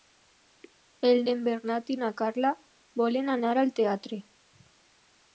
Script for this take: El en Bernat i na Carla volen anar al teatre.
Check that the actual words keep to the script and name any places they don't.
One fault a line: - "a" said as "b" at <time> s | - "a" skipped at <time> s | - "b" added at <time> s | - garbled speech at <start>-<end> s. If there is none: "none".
none